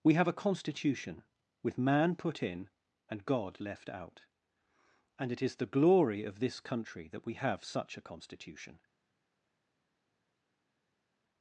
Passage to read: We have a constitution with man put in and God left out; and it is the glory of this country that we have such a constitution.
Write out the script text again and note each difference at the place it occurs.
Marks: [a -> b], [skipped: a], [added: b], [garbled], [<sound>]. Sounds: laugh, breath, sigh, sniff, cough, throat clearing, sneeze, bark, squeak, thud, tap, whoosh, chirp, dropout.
We have a constitution with man put in and God left out; and it is the glory of this country that we have such a constitution.